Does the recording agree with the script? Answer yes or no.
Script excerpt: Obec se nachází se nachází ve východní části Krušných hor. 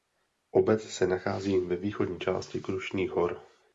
no